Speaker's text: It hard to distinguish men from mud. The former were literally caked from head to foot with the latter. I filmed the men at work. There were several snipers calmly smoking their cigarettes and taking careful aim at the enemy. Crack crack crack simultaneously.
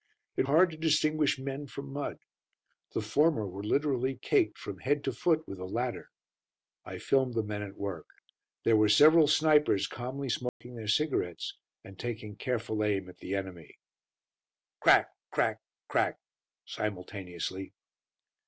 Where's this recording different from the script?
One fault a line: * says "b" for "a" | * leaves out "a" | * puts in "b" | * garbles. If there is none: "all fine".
all fine